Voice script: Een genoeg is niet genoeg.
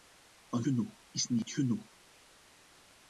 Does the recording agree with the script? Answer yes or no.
yes